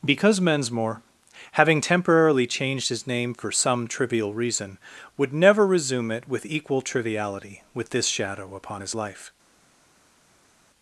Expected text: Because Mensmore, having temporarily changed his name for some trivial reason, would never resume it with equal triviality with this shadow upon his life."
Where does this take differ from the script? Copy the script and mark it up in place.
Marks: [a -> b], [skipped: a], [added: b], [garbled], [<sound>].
Because Mensmore, having temporarily changed his name for some trivial reason, would never resume it with equal triviality with this shadow upon his life."